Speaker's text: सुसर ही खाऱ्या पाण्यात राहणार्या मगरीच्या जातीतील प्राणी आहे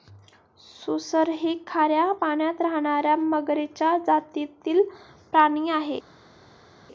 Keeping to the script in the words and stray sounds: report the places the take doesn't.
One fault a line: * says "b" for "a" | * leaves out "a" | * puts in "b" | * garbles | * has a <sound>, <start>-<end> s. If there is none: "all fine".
all fine